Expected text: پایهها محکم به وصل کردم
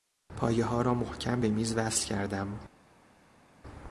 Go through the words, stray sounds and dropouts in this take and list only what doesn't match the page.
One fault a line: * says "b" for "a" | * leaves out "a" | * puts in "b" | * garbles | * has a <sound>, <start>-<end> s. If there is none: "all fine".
* puts in "را"
* puts in "میز"